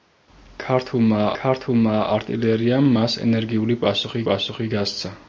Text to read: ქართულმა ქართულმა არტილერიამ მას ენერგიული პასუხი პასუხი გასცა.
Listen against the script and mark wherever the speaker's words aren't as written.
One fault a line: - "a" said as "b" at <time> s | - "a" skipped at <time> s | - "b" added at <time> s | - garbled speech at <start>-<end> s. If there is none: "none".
none